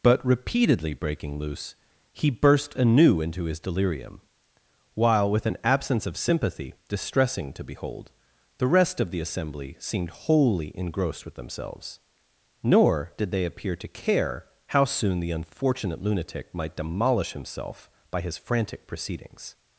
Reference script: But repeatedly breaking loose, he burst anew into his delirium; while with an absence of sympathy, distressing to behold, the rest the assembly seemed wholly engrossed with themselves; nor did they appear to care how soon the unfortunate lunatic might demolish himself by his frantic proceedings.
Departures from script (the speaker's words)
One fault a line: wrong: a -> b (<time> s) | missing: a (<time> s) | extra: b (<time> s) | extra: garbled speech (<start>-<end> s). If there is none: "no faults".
extra: of (9.0 s)